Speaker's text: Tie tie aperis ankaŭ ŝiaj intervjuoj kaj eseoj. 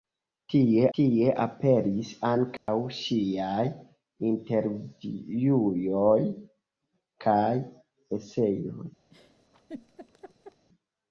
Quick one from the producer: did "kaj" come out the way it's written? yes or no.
yes